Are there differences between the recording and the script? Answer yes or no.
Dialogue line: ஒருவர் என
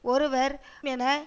no